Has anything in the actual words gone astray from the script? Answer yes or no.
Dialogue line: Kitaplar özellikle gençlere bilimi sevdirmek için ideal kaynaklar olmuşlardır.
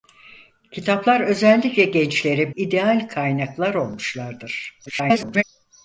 yes